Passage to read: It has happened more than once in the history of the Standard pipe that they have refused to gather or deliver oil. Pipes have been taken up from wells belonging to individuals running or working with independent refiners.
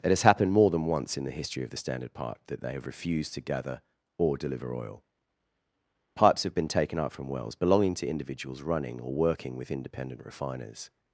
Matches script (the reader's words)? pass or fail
pass